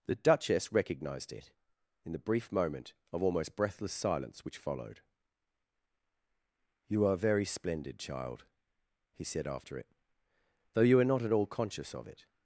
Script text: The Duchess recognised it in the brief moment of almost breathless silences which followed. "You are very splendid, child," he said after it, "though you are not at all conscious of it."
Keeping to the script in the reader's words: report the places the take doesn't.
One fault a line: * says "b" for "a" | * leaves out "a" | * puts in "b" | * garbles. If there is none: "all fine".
* says "silence" for "silences"